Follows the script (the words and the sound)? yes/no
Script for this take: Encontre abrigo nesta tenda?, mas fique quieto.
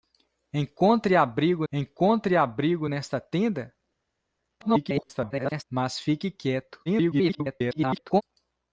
no